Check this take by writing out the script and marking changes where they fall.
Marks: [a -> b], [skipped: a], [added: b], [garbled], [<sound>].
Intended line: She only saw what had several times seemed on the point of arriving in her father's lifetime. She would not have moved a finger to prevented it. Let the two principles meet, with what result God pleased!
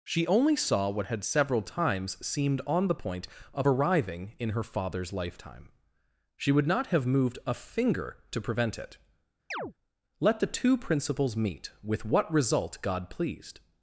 She only saw what had several times seemed on the point of arriving in her father's lifetime. She would not have moved a finger to [prevented -> prevent] it. [chirp] Let the two principles meet, with what result God pleased!